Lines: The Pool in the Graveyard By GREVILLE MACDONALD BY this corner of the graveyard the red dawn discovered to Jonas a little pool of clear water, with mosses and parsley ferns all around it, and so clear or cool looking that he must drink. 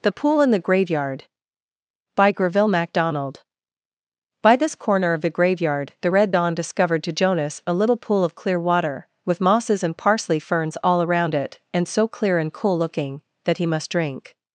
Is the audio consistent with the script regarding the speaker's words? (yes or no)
no